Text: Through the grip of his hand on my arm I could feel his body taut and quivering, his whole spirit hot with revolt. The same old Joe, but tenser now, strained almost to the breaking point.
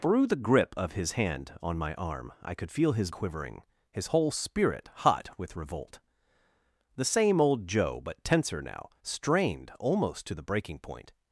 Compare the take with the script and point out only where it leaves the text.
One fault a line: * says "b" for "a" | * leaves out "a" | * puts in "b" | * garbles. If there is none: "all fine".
* leaves out "body taut and"